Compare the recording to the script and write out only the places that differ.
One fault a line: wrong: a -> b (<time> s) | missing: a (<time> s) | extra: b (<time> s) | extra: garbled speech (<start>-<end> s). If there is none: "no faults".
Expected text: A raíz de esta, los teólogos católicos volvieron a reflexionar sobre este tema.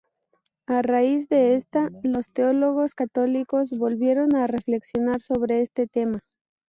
no faults